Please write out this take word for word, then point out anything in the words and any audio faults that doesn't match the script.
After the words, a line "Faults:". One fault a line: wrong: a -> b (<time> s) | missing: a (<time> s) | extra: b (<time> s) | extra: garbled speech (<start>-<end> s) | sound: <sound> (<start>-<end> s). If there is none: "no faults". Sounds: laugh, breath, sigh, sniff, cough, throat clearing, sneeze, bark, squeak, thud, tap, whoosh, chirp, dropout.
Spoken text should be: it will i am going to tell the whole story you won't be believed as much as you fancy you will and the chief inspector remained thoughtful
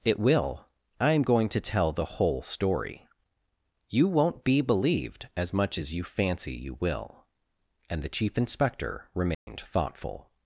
it will i am going to tell the whole story you won't be believed as much as you fancy you will and the chief inspector remained thoughtful
Faults:
sound: dropout (9.3-9.5 s)